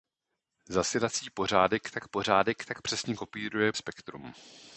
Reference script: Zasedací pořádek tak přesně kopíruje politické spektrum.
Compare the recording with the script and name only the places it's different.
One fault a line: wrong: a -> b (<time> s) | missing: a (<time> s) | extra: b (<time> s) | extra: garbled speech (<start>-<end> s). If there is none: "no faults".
extra: pořádek tak (2.1 s)
missing: politické (3.7 s)